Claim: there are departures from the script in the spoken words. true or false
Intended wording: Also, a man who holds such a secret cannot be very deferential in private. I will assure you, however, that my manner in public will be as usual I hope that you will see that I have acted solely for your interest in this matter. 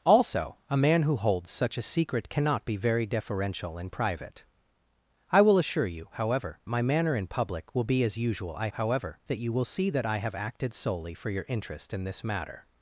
true